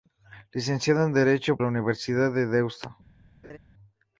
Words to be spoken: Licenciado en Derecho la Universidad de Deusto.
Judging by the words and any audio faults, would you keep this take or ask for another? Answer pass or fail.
fail